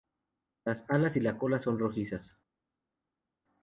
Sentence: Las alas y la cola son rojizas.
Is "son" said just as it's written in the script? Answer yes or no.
yes